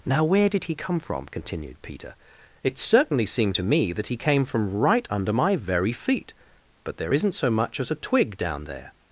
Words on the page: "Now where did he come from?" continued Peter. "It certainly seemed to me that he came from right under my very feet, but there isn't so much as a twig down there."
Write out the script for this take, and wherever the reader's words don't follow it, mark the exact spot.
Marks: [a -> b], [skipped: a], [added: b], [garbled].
"Now where did he come from?" continued Peter. "It certainly seemed to me that he came from right under my very feet, but there isn't so much as a twig down there."